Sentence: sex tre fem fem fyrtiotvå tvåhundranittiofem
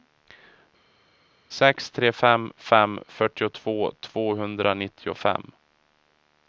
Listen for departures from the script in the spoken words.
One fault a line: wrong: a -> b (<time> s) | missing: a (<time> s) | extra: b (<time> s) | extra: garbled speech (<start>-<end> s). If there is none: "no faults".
no faults